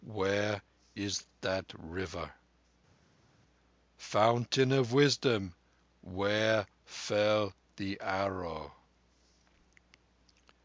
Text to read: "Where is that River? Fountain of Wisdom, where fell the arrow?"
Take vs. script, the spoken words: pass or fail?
pass